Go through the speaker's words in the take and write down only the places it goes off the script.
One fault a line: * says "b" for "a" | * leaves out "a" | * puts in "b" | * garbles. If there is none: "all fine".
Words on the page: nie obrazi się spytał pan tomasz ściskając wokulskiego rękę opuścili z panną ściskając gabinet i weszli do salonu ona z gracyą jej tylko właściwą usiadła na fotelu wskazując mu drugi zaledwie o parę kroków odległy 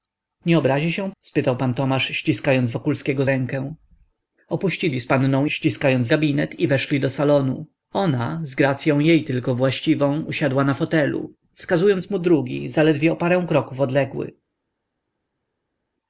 all fine